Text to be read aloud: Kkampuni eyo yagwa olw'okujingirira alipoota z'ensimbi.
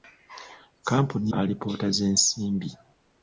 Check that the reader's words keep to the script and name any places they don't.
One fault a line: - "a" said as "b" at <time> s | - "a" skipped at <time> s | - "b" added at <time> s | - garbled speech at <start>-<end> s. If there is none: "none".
- "eyo yagwa olw'okujingirira" skipped at 1.3 s